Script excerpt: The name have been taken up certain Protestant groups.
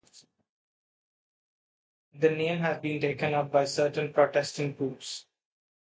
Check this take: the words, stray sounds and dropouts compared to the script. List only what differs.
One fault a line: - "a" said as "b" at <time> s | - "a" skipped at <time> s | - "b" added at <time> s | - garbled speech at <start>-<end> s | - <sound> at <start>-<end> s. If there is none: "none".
- "have" said as "has" at 2.6 s
- "by" added at 3.5 s